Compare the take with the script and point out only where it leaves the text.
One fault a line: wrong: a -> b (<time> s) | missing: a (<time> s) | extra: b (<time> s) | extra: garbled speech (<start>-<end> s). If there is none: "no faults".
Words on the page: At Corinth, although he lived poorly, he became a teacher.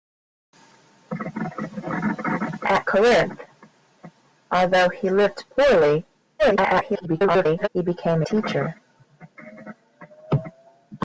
extra: garbled speech (6.4-7.7 s)
missing: a (8.2 s)